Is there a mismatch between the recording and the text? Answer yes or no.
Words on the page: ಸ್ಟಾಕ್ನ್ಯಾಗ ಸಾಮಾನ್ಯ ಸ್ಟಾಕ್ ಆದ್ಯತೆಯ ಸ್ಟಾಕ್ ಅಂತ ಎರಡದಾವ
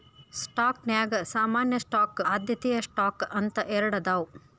no